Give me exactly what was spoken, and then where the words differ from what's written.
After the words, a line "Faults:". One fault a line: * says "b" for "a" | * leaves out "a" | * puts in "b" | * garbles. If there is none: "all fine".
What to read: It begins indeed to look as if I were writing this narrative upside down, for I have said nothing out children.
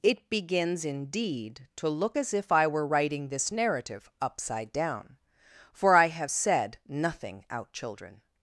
It begins indeed to look as if I were writing this narrative upside down, for I have said nothing out children.
Faults:
all fine